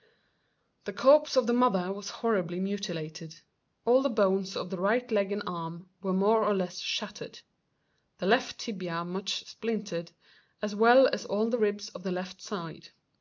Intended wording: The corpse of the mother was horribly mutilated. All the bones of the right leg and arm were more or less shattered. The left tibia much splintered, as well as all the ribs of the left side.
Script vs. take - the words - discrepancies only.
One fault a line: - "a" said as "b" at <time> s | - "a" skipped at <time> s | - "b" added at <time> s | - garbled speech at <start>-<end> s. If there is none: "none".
none